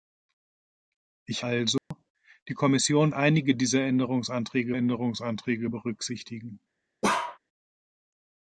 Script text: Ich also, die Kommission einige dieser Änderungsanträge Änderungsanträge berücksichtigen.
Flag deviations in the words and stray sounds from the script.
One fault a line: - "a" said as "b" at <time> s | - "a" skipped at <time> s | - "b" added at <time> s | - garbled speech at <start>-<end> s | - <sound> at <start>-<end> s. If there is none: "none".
- dropout at 1.8-1.9 s
- bark at 7.0-7.4 s